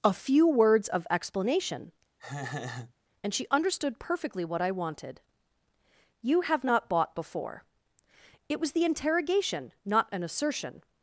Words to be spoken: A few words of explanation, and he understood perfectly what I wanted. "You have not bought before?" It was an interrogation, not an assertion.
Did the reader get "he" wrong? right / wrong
wrong